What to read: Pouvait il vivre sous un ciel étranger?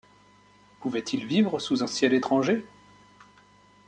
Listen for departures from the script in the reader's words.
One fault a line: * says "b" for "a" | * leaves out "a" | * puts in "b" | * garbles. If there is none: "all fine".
all fine